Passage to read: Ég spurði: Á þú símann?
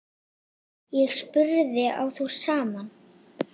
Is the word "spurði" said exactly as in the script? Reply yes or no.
yes